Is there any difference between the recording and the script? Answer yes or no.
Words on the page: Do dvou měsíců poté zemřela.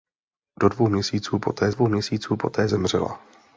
yes